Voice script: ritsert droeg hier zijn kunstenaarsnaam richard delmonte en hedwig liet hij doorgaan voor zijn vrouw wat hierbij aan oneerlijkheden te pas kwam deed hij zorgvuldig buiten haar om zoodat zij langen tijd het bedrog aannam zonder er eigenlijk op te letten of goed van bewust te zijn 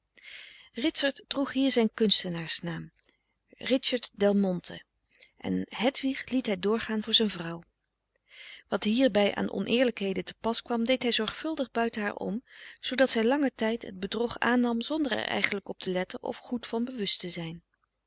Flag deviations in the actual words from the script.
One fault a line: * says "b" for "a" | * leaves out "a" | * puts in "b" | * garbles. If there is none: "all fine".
all fine